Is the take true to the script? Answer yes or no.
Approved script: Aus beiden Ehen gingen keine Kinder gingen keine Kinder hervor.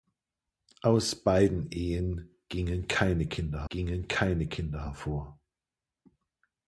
yes